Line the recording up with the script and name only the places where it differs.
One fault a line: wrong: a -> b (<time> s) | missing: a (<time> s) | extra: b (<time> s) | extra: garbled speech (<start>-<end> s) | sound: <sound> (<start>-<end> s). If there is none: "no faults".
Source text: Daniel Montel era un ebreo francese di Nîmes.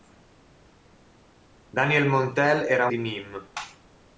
missing: un ebreo francese (2.9 s)